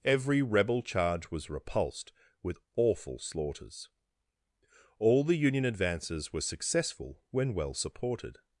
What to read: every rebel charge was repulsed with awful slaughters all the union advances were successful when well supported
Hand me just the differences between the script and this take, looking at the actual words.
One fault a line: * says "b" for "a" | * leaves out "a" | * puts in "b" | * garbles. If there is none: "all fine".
all fine